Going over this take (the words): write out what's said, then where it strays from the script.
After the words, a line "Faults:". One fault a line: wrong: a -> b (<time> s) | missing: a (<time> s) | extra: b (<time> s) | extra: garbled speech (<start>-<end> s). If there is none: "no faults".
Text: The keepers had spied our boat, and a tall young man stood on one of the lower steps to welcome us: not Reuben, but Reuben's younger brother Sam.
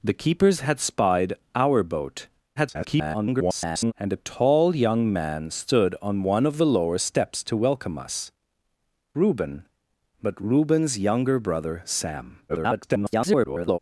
The keepers had spied our boat, [garbled] and a tall young man stood on one of the lower steps to welcome us: Reuben, but Reuben's younger brother Sam. [garbled]
Faults:
extra: garbled speech (2.6-3.9 s)
missing: not (8.3 s)
extra: garbled speech (12.5-13.8 s)